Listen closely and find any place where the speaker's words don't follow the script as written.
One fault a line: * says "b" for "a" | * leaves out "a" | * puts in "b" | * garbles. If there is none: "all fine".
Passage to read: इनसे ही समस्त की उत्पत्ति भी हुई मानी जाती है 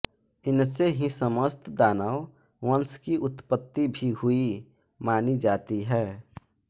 * puts in "दानव वंश"